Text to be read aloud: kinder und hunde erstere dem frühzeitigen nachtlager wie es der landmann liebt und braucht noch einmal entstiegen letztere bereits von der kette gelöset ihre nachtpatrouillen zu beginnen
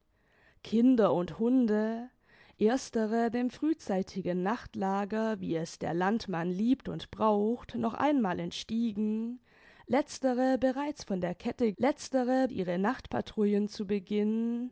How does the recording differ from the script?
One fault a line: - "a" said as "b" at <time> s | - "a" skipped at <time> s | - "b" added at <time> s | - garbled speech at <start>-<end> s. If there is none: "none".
- "gelöset" said as "letztere" at 11.8 s